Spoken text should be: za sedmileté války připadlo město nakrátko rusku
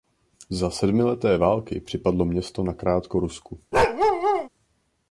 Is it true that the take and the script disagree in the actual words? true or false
false